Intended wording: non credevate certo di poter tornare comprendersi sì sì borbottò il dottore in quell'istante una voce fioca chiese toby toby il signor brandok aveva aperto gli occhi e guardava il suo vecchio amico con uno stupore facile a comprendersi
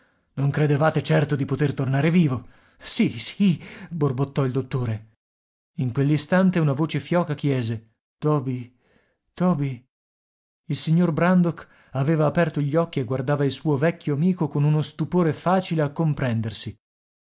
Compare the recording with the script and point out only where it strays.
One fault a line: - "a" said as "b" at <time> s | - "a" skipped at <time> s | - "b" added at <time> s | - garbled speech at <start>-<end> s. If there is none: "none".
- "comprendersi" said as "vivo" at 2.1 s